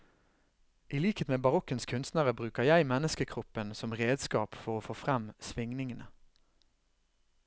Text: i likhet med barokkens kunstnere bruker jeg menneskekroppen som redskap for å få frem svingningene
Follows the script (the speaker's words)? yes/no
yes